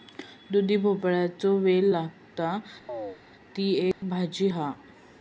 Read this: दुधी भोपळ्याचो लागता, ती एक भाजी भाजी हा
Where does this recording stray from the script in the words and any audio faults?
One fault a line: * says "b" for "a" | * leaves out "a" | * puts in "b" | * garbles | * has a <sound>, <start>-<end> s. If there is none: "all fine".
* puts in "वेल"
* has a chirp, 2.9-3.2 s
* has a dropout, 3.9-4.0 s
* leaves out "भाजी"